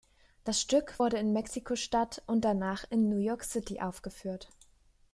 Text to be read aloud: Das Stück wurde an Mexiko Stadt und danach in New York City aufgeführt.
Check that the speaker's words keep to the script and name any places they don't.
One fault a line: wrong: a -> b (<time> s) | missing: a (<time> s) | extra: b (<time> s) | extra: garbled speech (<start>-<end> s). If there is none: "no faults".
wrong: an -> in (1.2 s)